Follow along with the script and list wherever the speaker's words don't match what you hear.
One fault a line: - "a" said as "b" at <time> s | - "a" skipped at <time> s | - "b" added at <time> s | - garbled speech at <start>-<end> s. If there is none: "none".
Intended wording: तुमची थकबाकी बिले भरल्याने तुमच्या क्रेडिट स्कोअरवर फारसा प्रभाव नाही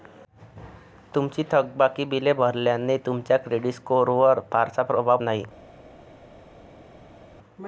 none